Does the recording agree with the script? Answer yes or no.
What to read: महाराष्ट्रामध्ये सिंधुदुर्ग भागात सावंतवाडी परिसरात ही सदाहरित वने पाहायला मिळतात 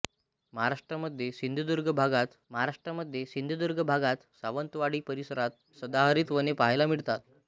no